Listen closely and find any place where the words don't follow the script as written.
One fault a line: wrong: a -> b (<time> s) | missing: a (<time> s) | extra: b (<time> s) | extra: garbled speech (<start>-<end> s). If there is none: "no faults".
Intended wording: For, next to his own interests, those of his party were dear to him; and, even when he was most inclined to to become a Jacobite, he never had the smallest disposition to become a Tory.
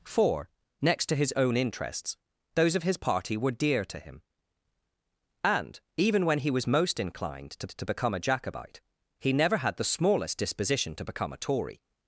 no faults